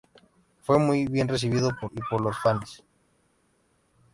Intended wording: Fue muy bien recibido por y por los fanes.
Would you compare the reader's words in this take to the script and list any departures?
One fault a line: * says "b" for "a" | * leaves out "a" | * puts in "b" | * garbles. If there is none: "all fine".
all fine